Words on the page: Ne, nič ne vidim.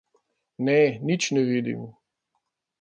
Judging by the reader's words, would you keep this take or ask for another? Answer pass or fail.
pass